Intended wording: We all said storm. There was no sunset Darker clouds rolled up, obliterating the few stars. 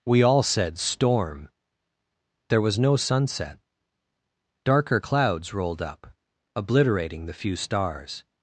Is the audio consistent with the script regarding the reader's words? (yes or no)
yes